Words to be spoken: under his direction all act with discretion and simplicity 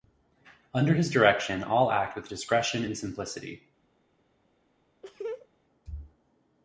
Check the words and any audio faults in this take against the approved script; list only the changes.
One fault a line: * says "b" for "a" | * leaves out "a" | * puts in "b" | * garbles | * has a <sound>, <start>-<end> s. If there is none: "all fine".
* has a laugh, 5.0-5.5 s